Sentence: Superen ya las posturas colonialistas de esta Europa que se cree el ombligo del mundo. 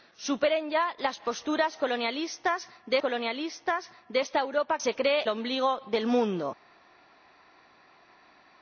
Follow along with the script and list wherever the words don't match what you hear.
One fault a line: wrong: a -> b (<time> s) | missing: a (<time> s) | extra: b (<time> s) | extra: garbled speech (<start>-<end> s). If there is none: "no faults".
extra: colonialistas de (3.0 s)
missing: que (4.8 s)
missing: el (5.2 s)